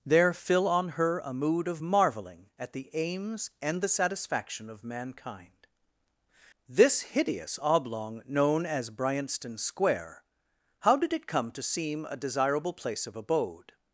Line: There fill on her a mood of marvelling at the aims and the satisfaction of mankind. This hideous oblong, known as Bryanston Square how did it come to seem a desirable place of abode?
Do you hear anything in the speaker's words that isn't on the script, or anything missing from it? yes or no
no